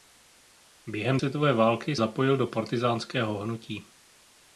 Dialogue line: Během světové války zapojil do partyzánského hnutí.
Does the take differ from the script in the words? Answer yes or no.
no